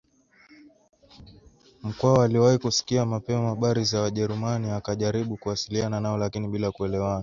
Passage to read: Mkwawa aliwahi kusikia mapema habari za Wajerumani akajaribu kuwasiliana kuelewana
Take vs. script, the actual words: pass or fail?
fail